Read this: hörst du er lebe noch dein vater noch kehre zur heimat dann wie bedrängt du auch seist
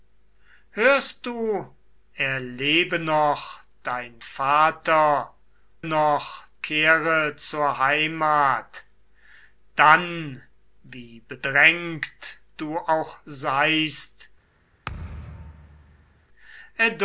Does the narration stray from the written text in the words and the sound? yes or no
yes